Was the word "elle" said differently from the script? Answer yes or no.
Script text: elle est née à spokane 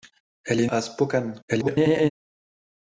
no